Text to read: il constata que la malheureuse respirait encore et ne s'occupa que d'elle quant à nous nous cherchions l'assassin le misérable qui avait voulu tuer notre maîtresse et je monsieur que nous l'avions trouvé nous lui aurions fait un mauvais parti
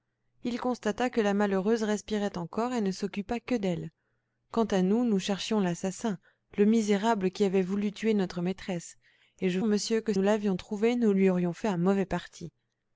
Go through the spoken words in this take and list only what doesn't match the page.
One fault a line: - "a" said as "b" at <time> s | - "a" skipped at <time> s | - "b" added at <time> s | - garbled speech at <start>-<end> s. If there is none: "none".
none